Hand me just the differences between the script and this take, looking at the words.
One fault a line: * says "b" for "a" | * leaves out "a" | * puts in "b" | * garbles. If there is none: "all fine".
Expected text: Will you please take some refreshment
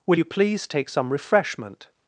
all fine